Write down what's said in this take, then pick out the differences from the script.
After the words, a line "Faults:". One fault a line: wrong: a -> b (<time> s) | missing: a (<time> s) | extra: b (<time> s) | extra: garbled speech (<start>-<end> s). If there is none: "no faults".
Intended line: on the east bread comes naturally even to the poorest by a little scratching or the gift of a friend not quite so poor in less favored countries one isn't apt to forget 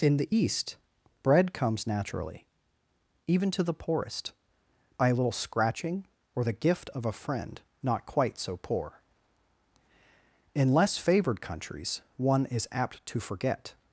in the east bread comes naturally even to the poorest by a little scratching or the gift of a friend not quite so poor in less favored countries one is apt to forget
Faults:
wrong: on -> in (0.0 s)
wrong: isn't -> is (12.4 s)